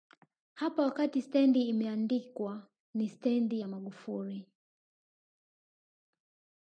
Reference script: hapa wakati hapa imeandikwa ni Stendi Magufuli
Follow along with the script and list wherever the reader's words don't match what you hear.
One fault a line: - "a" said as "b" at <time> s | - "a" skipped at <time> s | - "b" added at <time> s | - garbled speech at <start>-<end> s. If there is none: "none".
- "hapa" said as "stendi" at 1.2 s
- "ya" added at 3.6 s